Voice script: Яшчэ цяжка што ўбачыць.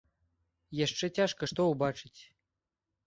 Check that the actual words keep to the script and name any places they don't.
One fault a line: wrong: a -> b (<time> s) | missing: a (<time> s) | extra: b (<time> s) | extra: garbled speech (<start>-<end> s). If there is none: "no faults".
no faults